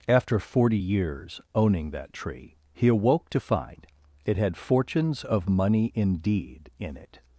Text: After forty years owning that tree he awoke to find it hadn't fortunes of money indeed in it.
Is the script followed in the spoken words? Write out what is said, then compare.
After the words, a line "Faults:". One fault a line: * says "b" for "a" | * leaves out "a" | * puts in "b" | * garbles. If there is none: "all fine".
After forty years owning that tree he awoke to find it had fortunes of money indeed in it.
Faults:
* says "had" for "hadn't"